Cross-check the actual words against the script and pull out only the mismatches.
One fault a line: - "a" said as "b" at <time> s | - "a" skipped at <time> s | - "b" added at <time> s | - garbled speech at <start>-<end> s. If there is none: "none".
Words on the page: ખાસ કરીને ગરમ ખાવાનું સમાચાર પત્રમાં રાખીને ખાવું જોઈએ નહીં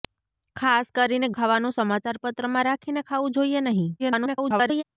- "ગરમ" skipped at 1.3 s
- garbled speech at 4.0-4.8 s